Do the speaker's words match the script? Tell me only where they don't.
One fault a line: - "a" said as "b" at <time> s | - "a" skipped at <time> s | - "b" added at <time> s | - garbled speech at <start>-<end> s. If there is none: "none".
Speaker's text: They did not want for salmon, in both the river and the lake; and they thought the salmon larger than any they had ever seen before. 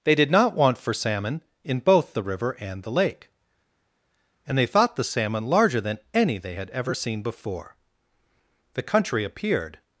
- "The country appeared" added at 8.7 s